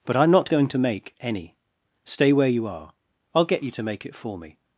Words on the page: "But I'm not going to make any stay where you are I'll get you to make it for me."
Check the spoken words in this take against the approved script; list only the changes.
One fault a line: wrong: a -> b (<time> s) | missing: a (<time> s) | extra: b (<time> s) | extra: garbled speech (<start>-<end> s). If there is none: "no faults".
no faults